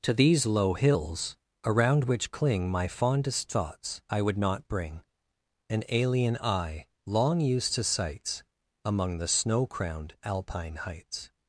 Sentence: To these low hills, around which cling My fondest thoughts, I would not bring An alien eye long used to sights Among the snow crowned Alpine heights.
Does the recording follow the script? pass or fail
pass